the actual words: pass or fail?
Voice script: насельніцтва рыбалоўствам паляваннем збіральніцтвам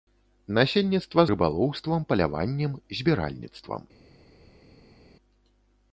pass